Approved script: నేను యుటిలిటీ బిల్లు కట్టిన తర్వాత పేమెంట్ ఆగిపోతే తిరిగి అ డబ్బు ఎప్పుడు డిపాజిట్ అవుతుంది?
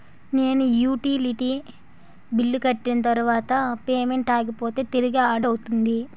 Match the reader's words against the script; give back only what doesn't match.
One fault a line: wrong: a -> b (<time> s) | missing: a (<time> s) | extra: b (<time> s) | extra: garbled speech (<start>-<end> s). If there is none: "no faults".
missing: డబ్బు ఎప్పుడు డిపాజిట్ (5.3 s)